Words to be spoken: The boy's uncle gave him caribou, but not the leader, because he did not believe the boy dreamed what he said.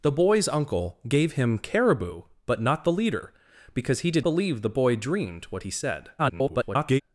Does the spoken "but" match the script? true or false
true